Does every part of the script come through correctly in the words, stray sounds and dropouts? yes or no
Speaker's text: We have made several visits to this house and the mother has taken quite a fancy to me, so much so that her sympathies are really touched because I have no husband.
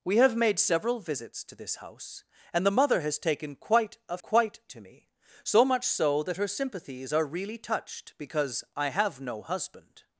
no